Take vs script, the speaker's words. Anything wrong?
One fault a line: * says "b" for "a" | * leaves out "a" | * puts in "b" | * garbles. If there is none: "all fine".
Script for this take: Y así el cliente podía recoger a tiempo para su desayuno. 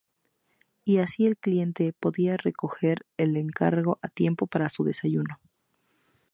* puts in "el encargo"